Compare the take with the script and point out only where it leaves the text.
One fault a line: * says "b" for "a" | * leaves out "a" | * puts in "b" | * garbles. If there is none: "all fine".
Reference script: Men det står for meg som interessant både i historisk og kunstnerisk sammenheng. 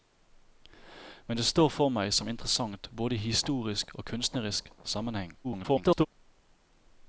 * garbles